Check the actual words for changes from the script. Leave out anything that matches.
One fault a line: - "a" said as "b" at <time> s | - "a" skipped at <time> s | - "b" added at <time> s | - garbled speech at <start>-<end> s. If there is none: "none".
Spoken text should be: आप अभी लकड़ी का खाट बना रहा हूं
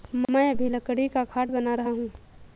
- "आप" said as "मैं" at 0.3 s